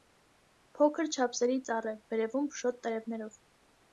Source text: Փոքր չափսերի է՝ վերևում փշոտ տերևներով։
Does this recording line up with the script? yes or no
no